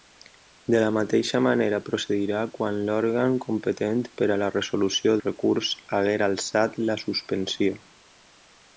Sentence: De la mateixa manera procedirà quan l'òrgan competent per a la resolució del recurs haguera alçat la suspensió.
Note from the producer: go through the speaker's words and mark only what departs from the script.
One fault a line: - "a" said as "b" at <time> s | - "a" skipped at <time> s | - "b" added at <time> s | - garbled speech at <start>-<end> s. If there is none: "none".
- "del" skipped at 5.1 s